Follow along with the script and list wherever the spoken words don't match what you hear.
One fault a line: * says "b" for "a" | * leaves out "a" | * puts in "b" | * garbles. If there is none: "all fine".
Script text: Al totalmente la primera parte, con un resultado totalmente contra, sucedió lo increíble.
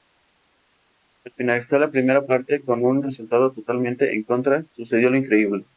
* says "finalizar" for "totalmente"
* puts in "en"